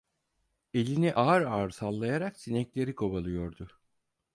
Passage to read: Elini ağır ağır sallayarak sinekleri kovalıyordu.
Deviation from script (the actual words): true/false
false